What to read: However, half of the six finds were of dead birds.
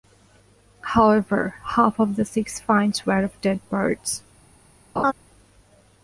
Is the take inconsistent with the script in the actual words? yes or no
no